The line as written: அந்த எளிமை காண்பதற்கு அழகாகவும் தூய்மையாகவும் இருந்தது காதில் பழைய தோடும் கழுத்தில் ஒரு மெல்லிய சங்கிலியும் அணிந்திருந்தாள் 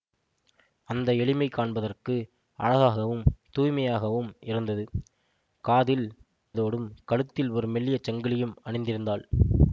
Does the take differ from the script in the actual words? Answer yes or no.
yes